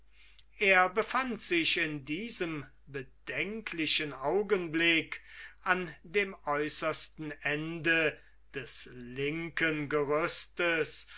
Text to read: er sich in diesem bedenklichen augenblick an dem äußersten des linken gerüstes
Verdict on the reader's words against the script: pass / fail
fail